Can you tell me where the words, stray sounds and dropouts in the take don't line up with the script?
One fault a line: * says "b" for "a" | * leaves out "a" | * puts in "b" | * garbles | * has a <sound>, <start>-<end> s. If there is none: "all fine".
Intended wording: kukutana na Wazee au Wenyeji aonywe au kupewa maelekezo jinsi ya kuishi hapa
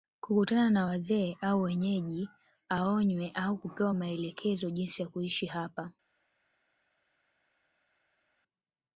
all fine